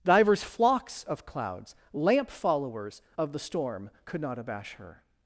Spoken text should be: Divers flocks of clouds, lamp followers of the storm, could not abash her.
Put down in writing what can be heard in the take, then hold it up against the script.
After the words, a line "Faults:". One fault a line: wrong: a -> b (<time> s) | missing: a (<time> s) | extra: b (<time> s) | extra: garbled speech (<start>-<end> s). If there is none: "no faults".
Divers flocks of clouds, lamp followers of the storm, could not abash her.
Faults:
no faults